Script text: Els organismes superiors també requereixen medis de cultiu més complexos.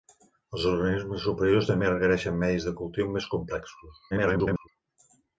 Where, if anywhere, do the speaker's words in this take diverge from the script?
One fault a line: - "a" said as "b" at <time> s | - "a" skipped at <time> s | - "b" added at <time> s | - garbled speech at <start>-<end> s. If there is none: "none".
- garbled speech at 4.1-4.7 s